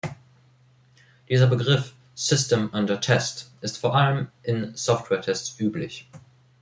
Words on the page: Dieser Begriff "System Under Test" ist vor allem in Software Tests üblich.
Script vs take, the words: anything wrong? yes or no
no